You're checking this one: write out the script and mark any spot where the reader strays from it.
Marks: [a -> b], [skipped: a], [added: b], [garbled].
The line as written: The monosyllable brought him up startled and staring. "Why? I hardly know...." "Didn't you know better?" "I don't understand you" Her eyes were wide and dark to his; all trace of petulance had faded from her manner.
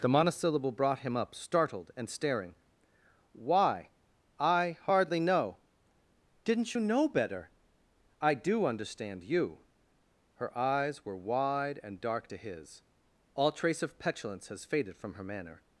The monosyllable brought him up startled and staring. "Why? I hardly know...." "Didn't you know better?" "I [don't -> do] understand you" Her eyes were wide and dark to his; all trace of petulance [had -> has] faded from her manner.